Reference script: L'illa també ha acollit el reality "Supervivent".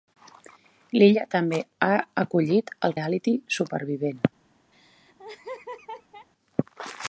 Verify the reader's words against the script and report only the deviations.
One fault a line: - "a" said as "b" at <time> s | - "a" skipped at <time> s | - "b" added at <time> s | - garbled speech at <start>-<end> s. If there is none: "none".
none